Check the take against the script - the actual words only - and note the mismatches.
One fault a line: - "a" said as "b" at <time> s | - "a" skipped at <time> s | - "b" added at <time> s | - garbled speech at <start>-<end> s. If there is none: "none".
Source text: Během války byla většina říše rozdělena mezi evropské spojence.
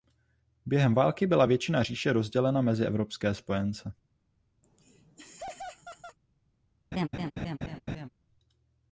none